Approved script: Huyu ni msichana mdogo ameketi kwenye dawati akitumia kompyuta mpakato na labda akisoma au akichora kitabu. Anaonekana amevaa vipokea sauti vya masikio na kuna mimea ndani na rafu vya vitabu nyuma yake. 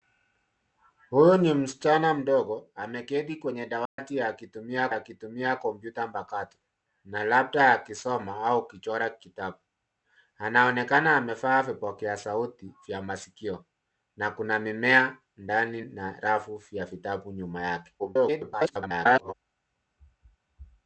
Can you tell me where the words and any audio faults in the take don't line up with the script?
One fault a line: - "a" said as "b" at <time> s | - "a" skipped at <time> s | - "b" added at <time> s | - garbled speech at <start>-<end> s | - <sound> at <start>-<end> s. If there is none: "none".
- dropout at 3.9-4.0 s
- "akitumia" added at 4.9 s
- garbled speech at 18.0-19.3 s